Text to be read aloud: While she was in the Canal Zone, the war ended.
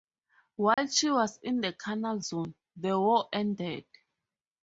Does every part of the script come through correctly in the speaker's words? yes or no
yes